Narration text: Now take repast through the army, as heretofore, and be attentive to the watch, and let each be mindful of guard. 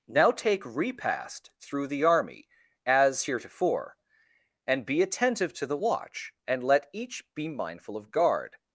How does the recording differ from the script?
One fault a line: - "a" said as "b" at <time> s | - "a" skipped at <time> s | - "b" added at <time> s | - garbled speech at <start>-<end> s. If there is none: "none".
none